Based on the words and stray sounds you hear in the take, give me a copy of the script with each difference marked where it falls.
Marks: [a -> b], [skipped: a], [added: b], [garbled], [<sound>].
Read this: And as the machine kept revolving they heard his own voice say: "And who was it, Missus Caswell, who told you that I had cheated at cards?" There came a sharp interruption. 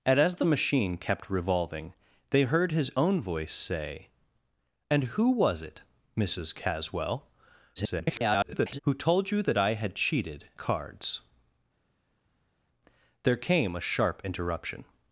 And as the machine kept revolving they heard his own voice say: "And who was it, Missus Caswell, [garbled] who told you that I had cheated [skipped: at] cards?" There came a sharp interruption.